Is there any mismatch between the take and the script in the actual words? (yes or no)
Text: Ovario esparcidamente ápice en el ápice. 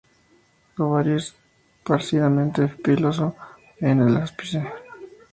yes